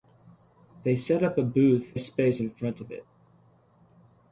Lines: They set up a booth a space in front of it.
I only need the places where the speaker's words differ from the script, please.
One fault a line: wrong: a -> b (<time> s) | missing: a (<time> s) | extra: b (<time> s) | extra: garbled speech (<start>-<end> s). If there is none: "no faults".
no faults